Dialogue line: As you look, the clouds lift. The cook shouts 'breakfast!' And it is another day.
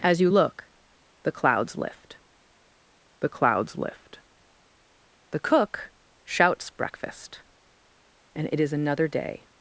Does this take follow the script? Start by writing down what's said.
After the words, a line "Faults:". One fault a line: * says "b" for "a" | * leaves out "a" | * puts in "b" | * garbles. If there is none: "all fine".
As you look, the clouds lift the clouds lift. The cook shouts 'breakfast!' And it is another day.
Faults:
* puts in "clouds lift The"